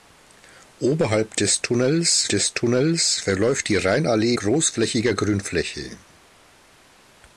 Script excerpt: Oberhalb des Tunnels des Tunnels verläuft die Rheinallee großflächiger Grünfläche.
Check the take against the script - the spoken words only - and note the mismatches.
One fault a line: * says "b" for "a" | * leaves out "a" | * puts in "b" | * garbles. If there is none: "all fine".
all fine